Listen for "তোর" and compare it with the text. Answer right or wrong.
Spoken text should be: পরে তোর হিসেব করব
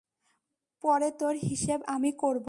right